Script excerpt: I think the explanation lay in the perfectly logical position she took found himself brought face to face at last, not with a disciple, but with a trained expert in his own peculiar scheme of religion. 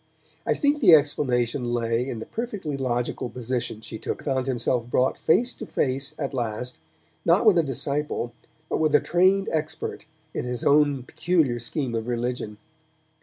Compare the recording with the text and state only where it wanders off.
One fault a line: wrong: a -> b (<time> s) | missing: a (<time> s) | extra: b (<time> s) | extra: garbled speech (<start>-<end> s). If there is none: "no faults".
no faults